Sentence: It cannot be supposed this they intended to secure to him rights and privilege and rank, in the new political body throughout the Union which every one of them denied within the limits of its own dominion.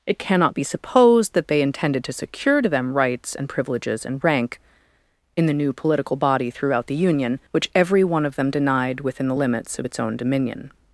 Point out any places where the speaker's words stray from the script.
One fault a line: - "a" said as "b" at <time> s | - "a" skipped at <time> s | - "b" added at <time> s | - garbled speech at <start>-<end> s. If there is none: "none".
- "this" said as "that" at 1.3 s
- "him" said as "them" at 2.7 s
- "privilege" said as "privileges" at 3.5 s